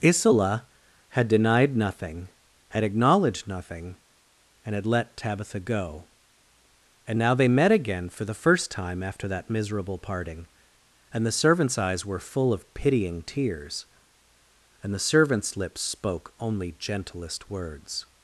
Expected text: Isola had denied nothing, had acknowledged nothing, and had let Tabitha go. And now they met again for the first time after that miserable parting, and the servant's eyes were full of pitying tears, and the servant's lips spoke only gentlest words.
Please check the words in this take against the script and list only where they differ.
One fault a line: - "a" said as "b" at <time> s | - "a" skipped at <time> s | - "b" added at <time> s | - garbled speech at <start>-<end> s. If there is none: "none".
none